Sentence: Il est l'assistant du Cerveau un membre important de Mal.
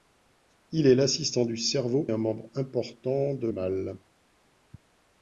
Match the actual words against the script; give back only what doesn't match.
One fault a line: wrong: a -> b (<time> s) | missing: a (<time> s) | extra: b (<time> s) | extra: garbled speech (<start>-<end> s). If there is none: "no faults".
no faults